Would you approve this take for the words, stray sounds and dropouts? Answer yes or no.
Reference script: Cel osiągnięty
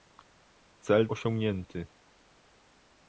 yes